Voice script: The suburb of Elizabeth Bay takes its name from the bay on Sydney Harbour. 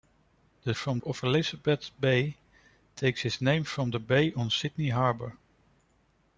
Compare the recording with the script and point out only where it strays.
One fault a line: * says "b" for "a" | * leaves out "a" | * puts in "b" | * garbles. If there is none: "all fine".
* says "from" for "suburb"